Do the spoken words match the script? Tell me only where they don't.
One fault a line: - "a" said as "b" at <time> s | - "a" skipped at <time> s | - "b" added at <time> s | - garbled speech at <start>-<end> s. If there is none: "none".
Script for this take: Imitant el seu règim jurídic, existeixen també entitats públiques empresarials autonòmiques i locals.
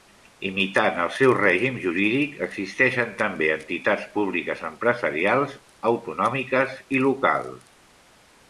none